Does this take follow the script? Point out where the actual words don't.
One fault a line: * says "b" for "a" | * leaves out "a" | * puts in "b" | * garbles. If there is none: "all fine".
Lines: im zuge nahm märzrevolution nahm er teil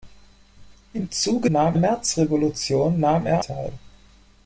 all fine